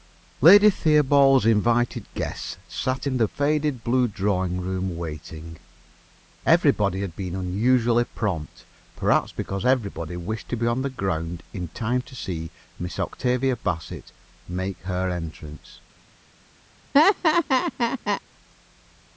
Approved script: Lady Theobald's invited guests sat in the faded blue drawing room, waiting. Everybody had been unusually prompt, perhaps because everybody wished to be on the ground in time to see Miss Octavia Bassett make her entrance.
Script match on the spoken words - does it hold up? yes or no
yes